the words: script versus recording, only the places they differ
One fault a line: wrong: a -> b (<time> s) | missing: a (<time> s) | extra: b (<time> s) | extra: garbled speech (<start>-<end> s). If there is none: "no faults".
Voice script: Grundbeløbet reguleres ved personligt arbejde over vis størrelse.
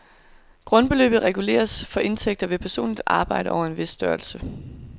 extra: for indtægter (1.9 s)
extra: en (3.6 s)